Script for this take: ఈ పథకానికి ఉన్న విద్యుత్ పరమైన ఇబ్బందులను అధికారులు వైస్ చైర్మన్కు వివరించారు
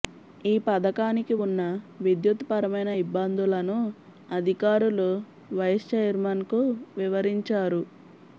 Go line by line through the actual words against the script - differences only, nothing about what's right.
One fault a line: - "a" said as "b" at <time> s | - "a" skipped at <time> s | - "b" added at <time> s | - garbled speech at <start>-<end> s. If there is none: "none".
none